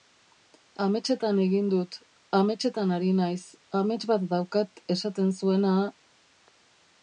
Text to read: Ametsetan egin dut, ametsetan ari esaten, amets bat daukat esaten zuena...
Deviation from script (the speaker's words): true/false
true